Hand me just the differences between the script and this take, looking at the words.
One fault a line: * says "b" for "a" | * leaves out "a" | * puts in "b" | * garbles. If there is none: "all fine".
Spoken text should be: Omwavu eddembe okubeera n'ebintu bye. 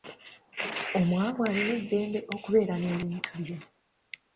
* puts in "alina"